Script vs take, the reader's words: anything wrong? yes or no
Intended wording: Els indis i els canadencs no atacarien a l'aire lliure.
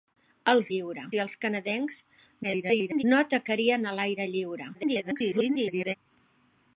yes